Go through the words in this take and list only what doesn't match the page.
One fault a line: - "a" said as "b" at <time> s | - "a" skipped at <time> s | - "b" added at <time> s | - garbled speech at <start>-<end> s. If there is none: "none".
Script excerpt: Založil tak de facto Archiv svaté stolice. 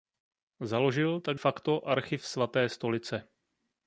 - "de" skipped at 1.4 s